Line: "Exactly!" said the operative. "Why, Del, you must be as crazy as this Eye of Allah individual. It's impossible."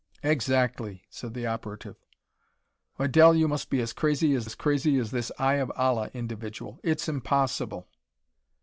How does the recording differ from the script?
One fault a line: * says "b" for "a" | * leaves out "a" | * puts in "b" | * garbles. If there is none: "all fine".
* puts in "as crazy as"